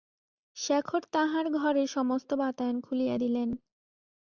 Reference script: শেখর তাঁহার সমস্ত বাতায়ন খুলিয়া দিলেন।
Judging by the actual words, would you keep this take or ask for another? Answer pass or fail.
fail